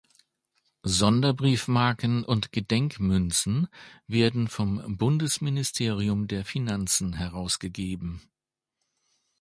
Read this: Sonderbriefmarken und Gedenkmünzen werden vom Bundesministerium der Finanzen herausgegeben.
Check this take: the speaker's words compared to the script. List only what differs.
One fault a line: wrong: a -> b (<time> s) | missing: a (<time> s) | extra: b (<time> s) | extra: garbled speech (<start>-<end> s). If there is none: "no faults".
no faults